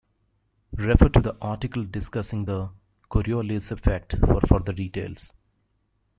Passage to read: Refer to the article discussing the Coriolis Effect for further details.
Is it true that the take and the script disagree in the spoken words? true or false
false